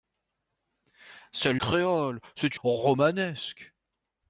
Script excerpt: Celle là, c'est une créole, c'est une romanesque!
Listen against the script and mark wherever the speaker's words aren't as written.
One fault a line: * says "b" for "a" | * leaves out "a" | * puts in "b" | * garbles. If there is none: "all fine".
* leaves out "là c'est une"
* leaves out "une"